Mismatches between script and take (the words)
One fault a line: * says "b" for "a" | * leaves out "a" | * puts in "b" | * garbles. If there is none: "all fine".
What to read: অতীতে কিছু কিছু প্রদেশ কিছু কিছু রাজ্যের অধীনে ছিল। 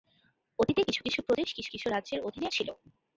all fine